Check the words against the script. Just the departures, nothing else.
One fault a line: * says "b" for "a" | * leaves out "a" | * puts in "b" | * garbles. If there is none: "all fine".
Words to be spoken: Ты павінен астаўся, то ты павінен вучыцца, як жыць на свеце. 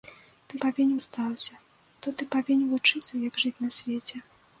all fine